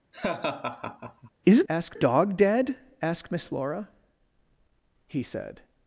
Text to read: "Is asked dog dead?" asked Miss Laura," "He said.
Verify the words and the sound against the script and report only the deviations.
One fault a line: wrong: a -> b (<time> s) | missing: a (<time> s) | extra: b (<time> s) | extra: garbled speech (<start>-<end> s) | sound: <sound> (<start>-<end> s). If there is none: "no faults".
sound: laugh (0.1-1.3 s)